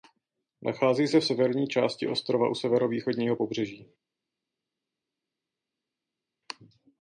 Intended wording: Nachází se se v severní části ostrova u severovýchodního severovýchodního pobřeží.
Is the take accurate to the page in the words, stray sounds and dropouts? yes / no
no